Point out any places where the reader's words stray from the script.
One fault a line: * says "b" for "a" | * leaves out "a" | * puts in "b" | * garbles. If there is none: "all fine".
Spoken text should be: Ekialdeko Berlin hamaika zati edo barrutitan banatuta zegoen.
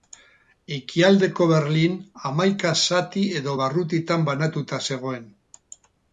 all fine